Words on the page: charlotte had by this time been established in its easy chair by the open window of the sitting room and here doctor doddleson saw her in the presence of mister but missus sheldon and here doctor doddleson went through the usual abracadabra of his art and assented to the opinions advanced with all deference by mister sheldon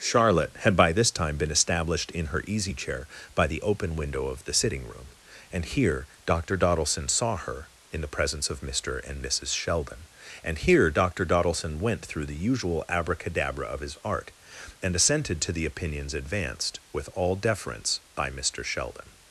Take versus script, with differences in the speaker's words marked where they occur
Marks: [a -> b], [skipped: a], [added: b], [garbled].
charlotte had by this time been established in [its -> her] easy chair by the open window of the sitting room and here doctor doddleson saw her in the presence of mister [but -> and] missus sheldon and here doctor doddleson went through the usual abracadabra of his art and assented to the opinions advanced with all deference by mister sheldon